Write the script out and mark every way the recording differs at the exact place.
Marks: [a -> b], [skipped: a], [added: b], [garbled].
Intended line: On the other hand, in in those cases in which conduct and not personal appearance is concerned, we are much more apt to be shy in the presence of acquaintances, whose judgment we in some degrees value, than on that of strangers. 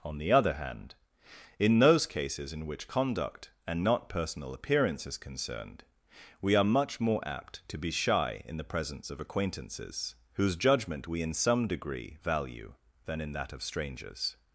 On the other hand, in [skipped: in] those cases in which conduct and not personal appearance is concerned, we are much more apt to be shy in the presence of acquaintances, whose judgment we in some [degrees -> degree] value, than [on -> in] that of strangers.